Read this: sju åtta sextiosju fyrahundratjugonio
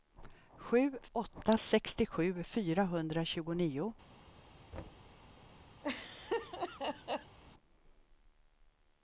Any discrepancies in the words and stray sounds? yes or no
yes